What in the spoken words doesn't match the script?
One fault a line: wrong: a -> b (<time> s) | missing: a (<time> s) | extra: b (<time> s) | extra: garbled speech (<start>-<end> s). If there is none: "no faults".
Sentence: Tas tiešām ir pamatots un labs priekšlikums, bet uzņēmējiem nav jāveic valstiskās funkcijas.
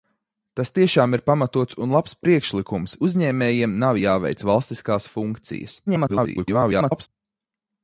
missing: bet (3.0 s)
extra: garbled speech (5.9-7.1 s)